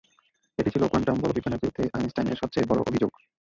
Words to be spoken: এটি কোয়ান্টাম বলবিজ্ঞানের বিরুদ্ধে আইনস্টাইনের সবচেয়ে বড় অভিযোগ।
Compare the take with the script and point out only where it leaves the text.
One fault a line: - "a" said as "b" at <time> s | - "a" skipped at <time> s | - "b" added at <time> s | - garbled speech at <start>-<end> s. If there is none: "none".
- "ছিল" added at 0.7 s